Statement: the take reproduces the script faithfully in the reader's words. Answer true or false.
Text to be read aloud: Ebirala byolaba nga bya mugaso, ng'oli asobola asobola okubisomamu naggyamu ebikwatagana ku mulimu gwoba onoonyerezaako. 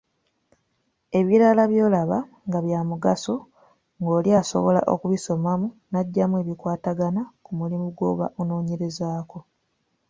false